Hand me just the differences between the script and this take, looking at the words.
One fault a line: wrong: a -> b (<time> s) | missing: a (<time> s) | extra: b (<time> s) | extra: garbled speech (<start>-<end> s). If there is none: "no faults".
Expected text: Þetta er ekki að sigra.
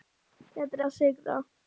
missing: ekki (0.8 s)